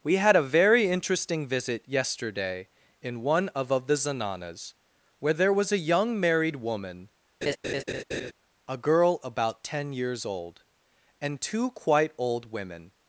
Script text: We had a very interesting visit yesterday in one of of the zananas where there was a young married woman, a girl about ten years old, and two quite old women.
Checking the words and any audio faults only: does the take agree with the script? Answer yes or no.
no